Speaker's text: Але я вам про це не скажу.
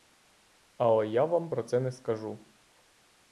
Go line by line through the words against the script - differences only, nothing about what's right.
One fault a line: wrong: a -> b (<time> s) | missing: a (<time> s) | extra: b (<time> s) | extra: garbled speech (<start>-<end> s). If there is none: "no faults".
no faults